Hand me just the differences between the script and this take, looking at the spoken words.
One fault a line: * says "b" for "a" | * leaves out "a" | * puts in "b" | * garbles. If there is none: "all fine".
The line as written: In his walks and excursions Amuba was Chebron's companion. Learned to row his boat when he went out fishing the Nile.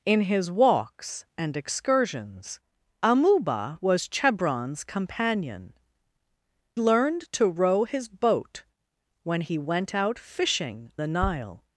all fine